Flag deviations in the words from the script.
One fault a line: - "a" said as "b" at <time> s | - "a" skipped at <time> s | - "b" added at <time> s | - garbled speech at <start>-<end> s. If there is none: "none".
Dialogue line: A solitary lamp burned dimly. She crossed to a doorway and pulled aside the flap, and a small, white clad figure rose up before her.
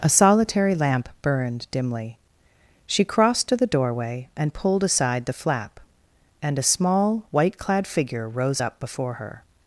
- "a" said as "the" at 3.5 s